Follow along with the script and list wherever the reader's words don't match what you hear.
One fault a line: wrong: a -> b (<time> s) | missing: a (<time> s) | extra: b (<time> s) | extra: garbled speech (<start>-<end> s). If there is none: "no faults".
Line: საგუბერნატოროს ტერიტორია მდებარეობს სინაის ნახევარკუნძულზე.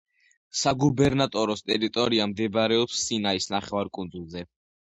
no faults